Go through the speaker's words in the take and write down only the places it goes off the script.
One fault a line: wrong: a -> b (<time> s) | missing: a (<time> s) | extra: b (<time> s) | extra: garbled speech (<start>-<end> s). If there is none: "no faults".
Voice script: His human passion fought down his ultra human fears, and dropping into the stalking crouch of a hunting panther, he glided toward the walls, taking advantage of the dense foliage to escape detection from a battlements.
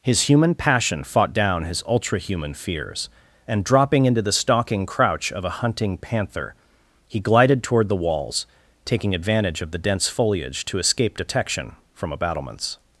no faults